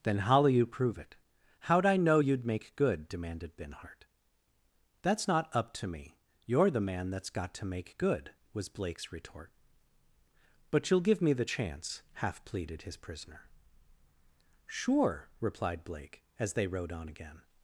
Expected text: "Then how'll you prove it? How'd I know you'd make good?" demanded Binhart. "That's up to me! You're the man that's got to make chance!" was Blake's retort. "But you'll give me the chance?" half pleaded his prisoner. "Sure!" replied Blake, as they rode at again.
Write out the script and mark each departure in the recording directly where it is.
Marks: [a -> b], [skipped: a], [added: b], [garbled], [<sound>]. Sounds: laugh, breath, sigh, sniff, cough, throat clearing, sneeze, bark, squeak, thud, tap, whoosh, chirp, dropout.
"Then how'll you prove it? How'd I know you'd make good?" demanded Binhart. "That's [added: not] up to me! You're the man that's got to make [chance!" -> good] was Blake's retort. "But you'll give me the chance?" half pleaded his prisoner. "Sure!" replied Blake, as they rode [at -> on] again.